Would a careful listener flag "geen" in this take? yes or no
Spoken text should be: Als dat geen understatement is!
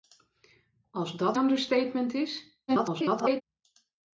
yes